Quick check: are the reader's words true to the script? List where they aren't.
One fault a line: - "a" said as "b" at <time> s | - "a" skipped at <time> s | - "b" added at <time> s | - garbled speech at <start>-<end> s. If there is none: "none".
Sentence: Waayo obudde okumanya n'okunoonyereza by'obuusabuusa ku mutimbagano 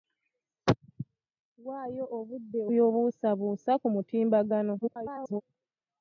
- "okumanya n'okunoonyereza" skipped at 2.6 s
- garbled speech at 4.8-5.4 s